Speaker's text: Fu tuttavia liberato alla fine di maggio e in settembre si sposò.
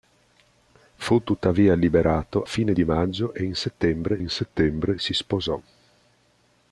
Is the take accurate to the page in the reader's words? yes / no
no